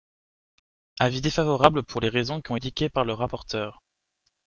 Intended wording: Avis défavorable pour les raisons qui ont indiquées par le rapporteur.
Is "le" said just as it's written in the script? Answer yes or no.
yes